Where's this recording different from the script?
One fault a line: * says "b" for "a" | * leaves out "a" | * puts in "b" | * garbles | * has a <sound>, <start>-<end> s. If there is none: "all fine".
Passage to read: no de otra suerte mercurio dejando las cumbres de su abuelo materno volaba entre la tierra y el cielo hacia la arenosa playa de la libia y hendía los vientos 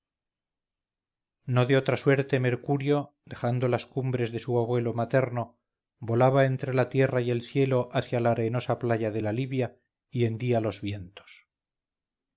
all fine